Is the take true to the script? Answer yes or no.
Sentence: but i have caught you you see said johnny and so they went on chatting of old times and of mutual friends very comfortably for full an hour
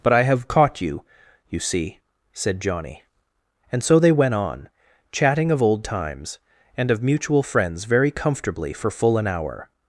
yes